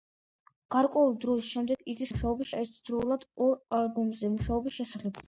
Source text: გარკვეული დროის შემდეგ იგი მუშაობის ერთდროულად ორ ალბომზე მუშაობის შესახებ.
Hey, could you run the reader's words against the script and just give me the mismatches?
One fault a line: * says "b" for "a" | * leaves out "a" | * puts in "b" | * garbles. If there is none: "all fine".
all fine